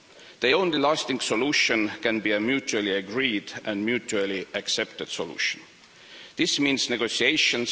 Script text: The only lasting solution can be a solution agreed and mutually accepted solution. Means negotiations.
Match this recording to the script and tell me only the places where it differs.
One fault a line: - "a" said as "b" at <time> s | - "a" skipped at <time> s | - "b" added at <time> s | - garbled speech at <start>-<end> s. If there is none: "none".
- "solution" said as "mutually" at 2.4 s
- "This" added at 6.4 s